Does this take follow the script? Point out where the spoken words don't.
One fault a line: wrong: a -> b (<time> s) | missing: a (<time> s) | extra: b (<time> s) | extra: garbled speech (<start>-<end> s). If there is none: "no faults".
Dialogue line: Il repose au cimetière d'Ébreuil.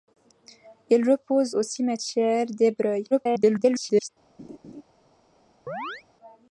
extra: garbled speech (3.1-4.1 s)